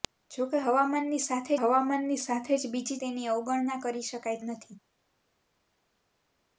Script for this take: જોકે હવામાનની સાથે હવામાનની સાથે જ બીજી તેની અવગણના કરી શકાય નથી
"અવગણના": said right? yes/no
yes